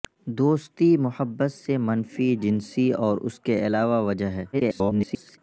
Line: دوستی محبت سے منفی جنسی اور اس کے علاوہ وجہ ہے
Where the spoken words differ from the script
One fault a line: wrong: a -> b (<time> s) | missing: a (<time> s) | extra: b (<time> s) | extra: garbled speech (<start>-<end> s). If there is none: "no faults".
extra: garbled speech (4.5-5.4 s)